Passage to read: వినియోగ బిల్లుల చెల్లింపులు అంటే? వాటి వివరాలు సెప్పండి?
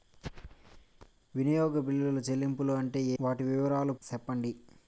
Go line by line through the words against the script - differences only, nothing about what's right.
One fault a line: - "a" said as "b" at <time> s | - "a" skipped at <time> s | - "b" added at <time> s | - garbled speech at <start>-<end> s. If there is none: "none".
none